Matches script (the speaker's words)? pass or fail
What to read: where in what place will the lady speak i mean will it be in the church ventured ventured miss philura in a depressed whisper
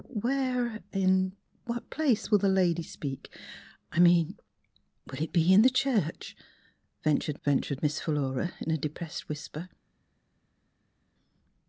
pass